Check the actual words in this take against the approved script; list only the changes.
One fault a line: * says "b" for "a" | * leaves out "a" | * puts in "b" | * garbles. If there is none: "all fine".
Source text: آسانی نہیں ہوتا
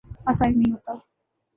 all fine